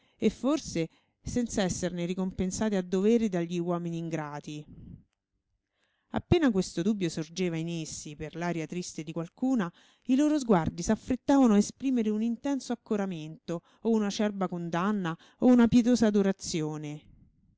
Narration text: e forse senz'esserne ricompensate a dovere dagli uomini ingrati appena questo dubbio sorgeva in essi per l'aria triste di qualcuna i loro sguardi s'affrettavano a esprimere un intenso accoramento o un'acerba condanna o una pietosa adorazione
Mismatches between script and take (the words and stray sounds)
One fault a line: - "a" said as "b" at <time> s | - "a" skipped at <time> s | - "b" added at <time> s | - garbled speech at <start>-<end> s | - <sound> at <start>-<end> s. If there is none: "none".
none